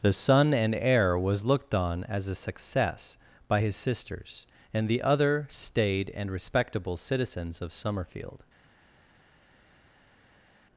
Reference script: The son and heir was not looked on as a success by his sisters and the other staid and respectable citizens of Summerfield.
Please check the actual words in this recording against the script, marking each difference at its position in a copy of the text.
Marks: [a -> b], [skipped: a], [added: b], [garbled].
The son and heir was [skipped: not] looked on as a success by his sisters and the other staid and respectable citizens of Summerfield.